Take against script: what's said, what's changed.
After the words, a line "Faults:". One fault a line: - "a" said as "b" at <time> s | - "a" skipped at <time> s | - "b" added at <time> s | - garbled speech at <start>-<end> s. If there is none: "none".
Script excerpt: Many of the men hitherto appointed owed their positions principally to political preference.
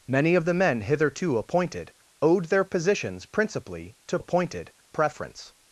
Many of the men hitherto appointed owed their positions principally to appointed preference.
Faults:
- "political" said as "appointed" at 4.2 s